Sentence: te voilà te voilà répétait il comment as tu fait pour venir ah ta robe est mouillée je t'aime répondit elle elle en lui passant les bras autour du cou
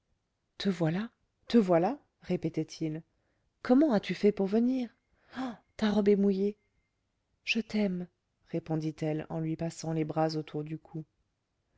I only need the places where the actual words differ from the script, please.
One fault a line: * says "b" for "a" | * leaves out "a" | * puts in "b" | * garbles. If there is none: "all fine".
* leaves out "elle"